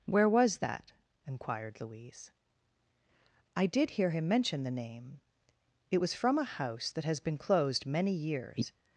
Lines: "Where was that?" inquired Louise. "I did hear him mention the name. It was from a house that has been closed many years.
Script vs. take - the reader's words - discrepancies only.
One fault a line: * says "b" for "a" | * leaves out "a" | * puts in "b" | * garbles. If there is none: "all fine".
all fine